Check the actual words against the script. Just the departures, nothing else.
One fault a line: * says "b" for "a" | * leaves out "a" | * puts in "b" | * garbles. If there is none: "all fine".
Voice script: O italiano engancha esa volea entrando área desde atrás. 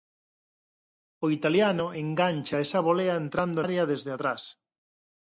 all fine